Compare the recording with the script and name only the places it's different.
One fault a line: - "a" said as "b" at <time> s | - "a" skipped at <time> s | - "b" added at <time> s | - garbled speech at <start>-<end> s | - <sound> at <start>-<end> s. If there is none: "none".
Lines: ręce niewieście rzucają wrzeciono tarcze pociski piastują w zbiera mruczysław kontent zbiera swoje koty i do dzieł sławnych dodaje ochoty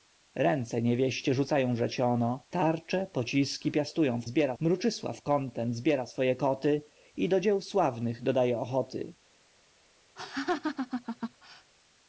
- laugh at 10.2-11.7 s